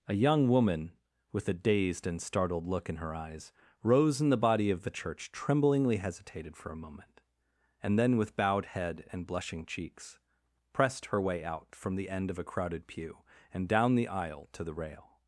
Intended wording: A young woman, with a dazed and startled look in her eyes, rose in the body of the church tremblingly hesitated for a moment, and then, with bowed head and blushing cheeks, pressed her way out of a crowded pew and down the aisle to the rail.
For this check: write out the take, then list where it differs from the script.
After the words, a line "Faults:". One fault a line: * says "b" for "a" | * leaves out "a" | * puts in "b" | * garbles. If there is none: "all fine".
A young woman, with a dazed and startled look in her eyes, rose in the body of the church tremblingly hesitated for a moment, and then, with bowed head and blushing cheeks, pressed her way out from the end of a crowded pew and down the aisle to the rail.
Faults:
* puts in "from the end"